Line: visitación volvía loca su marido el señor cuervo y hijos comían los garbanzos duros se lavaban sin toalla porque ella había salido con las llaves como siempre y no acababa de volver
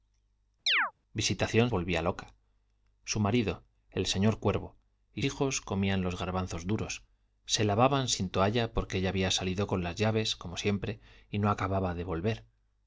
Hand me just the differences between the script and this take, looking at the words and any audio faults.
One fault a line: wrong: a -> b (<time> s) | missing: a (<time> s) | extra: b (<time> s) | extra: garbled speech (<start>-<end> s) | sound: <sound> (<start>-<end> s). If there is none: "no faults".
sound: chirp (0.7-0.9 s)